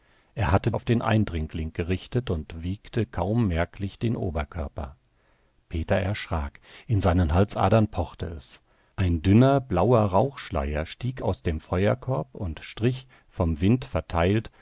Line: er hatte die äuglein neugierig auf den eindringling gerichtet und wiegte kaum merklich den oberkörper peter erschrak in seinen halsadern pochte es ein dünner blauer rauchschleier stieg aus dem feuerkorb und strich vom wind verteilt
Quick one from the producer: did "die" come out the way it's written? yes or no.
no